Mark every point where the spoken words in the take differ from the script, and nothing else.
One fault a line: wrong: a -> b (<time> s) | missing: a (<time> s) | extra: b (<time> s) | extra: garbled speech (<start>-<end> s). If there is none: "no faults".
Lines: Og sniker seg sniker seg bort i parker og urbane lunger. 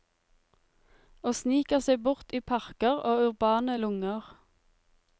missing: sniker seg (2.0 s)